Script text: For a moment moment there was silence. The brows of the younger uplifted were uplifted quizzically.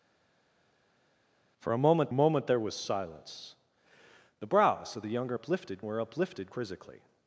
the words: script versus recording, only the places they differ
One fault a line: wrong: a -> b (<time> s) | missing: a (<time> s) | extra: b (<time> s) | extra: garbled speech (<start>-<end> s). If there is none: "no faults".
no faults